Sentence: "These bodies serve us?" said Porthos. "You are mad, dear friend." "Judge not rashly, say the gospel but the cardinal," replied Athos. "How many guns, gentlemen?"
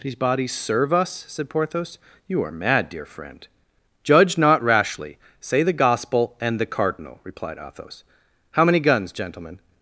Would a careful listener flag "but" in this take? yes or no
yes